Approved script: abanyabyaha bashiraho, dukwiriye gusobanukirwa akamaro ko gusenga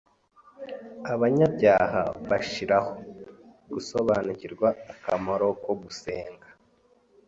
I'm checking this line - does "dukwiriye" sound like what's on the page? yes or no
no